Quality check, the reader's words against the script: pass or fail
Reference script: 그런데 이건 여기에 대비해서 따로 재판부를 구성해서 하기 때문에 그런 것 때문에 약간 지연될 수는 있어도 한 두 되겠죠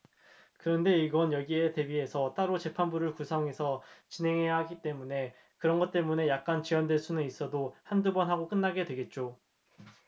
fail